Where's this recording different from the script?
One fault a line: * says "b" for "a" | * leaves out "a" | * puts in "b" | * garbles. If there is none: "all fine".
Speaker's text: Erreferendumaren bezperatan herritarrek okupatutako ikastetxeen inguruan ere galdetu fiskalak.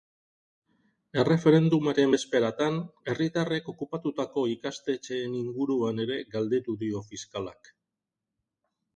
* puts in "dio"